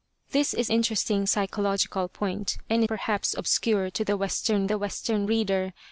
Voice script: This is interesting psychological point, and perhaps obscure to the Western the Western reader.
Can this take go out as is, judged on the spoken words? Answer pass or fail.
pass